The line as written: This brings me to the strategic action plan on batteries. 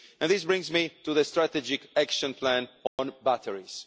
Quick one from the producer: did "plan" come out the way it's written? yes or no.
yes